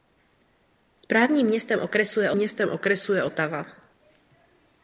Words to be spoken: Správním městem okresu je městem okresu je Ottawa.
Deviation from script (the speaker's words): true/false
false